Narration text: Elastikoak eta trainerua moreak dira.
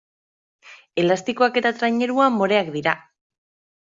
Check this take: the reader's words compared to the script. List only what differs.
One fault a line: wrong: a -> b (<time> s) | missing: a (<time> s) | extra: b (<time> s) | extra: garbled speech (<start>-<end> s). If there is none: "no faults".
no faults